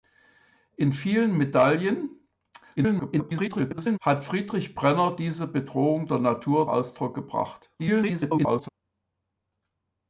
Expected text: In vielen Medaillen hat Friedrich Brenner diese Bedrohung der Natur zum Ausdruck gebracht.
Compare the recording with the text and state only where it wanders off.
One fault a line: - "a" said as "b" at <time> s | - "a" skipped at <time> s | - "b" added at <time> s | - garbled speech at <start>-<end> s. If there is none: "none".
- garbled speech at 2.8-4.0 s
- "zum" skipped at 6.7 s
- garbled speech at 7.8-8.7 s